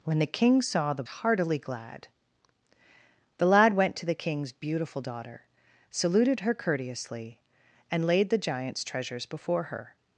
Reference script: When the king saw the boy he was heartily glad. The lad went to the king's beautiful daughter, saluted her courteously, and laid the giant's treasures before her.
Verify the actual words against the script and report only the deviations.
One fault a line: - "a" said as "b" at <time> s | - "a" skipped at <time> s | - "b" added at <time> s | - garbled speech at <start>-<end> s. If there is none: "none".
- "boy he was" skipped at 1.0 s